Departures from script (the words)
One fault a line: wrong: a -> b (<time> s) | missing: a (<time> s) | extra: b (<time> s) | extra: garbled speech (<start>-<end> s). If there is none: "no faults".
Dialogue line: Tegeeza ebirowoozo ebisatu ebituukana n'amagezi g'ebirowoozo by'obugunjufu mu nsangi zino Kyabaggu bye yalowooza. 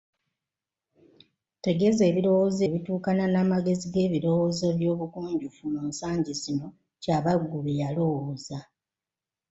missing: ebisatu (2.6 s)